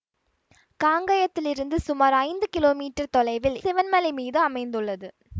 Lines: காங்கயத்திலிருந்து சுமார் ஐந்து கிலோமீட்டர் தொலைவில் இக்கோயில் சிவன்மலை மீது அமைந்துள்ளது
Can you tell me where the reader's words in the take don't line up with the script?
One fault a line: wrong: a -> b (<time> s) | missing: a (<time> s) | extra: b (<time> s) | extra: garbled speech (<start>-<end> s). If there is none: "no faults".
missing: இக்கோயில் (3.6 s)